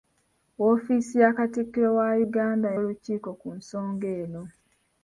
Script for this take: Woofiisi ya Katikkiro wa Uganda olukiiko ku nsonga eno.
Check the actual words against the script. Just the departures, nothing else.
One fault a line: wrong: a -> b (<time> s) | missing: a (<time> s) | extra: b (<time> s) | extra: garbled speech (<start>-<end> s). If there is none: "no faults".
no faults